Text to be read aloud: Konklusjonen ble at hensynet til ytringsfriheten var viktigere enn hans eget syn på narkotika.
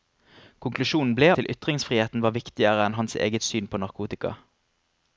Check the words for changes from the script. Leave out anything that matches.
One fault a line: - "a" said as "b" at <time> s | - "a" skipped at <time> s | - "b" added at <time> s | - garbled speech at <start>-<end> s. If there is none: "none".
- "at hensynet" skipped at 1.3 s